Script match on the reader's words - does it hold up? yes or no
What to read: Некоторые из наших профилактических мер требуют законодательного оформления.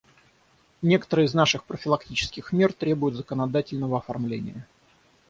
yes